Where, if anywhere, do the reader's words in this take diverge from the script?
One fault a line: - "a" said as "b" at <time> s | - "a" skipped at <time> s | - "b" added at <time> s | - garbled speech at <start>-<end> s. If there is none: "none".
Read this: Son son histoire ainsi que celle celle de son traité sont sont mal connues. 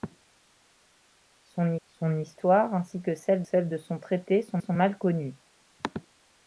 none